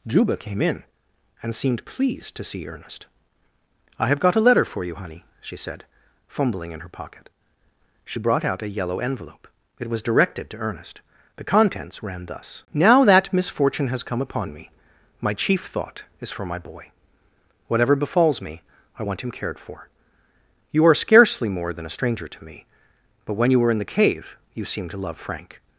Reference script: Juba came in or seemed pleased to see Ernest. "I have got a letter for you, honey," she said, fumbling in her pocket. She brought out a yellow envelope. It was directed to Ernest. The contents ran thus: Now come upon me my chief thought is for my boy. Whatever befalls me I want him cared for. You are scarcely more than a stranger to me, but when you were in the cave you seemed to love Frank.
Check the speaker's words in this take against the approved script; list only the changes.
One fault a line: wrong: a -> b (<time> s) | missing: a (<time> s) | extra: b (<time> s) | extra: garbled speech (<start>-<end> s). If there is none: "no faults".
wrong: or -> and (1.4 s)
extra: that misfortune has (13.0 s)